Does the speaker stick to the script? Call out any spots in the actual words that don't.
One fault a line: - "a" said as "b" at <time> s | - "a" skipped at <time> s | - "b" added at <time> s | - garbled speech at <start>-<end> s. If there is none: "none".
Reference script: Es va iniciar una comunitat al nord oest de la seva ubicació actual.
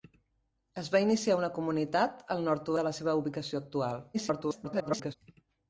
- "oest" skipped at 2.8 s
- garbled speech at 4.1-5.1 s